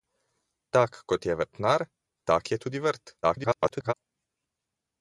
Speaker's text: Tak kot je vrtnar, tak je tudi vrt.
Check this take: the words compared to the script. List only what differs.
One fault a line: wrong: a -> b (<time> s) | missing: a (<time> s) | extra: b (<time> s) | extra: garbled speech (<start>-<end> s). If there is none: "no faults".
extra: garbled speech (3.2-3.9 s)